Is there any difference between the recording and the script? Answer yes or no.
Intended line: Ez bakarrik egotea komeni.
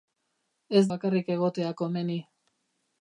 no